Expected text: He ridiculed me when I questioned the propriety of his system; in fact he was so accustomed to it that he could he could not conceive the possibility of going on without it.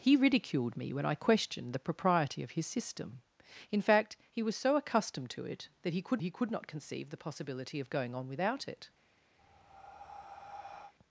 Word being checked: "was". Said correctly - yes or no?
yes